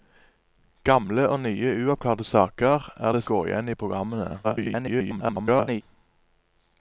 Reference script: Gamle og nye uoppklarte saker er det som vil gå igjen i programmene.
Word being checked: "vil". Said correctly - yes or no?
no